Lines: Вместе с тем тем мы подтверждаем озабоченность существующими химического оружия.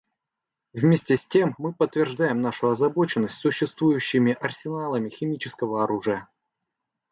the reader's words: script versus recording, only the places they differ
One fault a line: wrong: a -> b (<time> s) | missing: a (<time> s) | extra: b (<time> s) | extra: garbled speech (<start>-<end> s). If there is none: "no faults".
missing: тем (1.6 s)
extra: нашу (2.4 s)
extra: арсеналами (4.4 s)